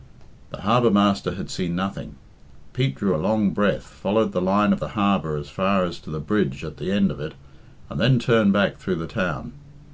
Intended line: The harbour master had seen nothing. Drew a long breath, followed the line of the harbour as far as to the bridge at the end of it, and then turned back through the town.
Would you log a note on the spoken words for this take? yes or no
yes